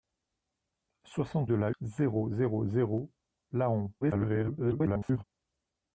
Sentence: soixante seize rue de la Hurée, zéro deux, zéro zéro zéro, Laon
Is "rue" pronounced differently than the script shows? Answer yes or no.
yes